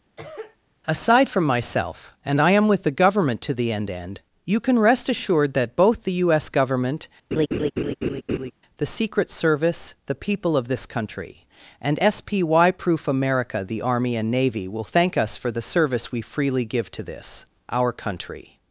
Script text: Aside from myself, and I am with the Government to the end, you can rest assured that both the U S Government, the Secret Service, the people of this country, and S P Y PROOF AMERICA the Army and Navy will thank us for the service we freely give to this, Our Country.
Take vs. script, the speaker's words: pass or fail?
fail